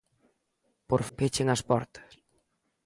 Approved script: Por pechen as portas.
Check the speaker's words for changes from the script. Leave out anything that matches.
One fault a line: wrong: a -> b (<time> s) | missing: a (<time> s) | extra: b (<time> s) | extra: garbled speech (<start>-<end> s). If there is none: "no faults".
no faults